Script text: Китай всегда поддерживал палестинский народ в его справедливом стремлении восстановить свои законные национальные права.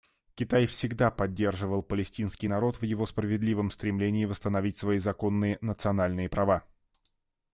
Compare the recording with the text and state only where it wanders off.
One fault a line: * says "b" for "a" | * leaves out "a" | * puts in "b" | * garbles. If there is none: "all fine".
all fine